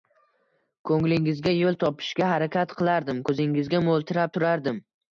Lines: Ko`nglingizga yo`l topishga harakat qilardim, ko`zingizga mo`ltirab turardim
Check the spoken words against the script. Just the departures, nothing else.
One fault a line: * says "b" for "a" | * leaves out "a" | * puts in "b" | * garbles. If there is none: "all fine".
all fine